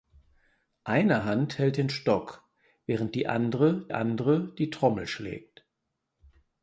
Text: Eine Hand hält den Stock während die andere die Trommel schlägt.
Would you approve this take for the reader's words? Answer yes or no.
no